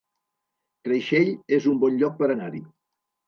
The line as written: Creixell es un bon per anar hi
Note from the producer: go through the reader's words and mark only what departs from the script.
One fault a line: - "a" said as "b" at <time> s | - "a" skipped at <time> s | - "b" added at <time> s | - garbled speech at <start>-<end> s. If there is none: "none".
- "lloc" added at 2.0 s